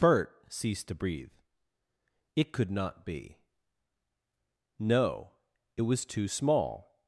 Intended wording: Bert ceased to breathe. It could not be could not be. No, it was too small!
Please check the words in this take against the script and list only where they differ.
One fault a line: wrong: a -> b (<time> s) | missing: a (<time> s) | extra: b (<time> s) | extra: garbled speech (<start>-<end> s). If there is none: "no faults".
missing: could not be (3.4 s)